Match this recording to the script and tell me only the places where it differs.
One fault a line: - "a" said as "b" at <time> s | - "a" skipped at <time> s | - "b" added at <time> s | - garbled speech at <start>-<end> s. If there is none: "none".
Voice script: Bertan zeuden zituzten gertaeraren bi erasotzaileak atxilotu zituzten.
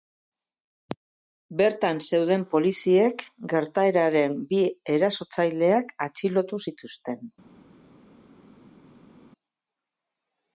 - "zituzten" said as "poliziek" at 2.5 s